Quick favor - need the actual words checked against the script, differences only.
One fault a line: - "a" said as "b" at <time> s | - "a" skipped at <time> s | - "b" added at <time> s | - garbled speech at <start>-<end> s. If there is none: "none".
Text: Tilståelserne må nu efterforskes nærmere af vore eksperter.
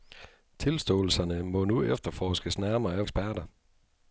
- "vore" skipped at 3.0 s